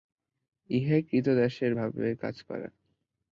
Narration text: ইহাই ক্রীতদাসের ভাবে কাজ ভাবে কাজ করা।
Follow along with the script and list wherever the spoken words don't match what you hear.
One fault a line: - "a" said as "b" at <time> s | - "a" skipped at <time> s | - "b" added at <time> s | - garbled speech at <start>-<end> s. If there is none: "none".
- "ভাবে কাজ" skipped at 2.4 s